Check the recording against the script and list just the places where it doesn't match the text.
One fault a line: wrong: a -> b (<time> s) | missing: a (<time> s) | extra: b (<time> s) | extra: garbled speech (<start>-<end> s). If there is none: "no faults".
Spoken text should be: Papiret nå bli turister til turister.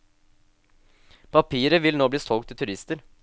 extra: vil (1.8 s)
wrong: turister -> solgt (2.2 s)